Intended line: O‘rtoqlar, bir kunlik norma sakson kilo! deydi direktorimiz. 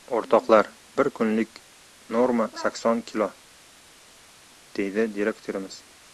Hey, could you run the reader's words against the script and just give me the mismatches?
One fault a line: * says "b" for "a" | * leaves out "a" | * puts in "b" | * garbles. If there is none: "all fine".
all fine